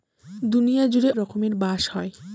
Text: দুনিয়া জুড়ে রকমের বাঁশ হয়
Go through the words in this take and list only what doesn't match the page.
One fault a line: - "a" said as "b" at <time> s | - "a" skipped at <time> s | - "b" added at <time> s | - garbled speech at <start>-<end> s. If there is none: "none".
none